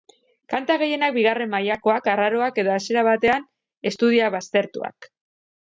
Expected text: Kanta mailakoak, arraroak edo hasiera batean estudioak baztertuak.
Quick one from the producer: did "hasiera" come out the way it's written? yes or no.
yes